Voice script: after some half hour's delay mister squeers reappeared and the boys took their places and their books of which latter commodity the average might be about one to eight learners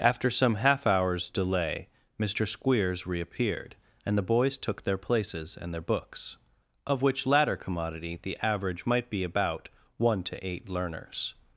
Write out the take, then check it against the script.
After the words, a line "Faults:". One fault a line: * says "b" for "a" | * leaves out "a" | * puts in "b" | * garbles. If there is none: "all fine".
after some half hour's delay mister squeers reappeared and the boys took their places and their books of which latter commodity the average might be about one to eight learners
Faults:
all fine